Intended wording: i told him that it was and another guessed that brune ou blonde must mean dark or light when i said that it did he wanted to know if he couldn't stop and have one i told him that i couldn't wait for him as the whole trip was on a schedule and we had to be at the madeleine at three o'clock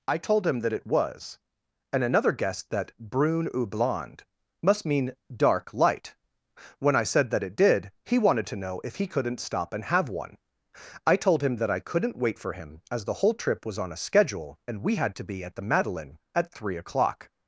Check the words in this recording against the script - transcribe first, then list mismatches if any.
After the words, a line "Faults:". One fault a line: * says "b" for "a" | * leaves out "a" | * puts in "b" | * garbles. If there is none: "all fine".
i told him that it was and another guessed that brune ou blonde must mean dark light when i said that it did he wanted to know if he couldn't stop and have one i told him that i couldn't wait for him as the whole trip was on a schedule and we had to be at the madeleine at three o'clock
Faults:
* leaves out "or"